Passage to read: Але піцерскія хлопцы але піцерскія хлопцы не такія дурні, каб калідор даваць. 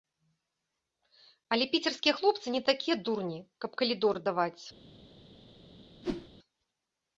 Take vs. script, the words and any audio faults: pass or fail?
fail